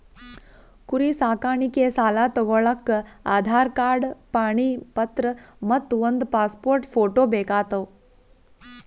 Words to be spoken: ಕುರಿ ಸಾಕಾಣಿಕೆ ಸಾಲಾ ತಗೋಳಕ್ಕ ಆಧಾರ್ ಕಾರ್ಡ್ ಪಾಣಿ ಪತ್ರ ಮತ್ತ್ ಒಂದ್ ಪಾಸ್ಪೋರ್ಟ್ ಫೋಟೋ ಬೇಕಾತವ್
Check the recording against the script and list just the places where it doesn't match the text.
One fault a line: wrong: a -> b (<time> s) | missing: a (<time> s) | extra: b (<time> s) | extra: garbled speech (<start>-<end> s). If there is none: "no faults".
no faults